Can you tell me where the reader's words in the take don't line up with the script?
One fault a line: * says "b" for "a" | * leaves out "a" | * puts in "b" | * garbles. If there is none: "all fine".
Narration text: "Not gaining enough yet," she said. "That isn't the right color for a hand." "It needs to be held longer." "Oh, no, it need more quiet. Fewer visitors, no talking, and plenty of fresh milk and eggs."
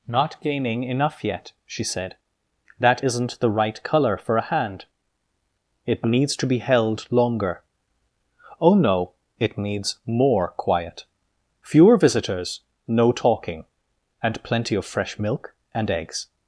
* says "needs" for "need"